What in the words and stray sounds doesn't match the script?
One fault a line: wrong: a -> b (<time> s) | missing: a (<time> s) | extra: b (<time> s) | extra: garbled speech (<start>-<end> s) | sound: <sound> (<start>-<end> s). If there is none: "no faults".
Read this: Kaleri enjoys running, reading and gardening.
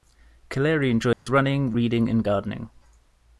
sound: dropout (1.1-1.3 s)